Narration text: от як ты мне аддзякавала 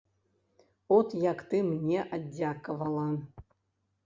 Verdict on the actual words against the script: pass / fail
pass